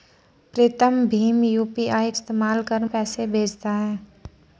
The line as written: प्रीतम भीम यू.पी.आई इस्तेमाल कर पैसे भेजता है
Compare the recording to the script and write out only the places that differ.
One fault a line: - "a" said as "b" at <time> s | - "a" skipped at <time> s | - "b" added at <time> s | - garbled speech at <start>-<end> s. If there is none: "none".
none